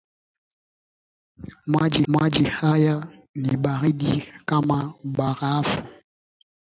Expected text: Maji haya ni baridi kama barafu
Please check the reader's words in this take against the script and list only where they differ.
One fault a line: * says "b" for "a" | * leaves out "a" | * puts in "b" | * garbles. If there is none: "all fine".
* puts in "maji"